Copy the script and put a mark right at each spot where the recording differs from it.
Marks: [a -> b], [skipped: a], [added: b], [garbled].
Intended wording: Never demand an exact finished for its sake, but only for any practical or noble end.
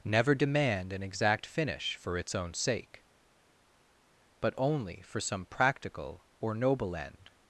Never demand an exact [finished -> finish] for its [added: own] sake, but only for [any -> some] practical or noble end.